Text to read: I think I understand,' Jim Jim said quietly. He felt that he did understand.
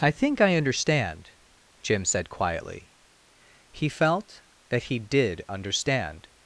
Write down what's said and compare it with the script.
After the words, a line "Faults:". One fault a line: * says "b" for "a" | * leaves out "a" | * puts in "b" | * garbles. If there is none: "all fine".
I think I understand,' Jim said quietly. He felt that he did understand.
Faults:
* leaves out "Jim"